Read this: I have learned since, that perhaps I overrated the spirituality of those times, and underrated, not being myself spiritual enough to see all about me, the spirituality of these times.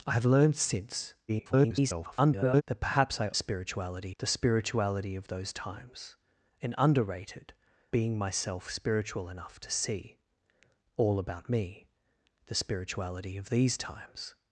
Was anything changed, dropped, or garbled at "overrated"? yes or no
yes